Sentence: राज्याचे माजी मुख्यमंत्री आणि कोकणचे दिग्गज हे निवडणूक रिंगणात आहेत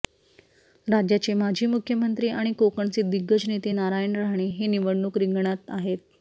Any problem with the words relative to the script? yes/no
yes